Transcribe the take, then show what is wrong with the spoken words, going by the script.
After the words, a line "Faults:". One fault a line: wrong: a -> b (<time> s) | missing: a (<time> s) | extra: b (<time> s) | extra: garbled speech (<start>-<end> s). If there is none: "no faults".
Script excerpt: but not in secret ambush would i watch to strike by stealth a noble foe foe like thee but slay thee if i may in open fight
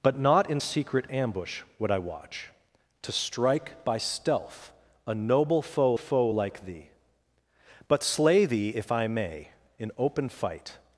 but not in secret ambush would i watch to strike by stealth a noble foe foe like thee but slay thee if i may in open fight
Faults:
no faults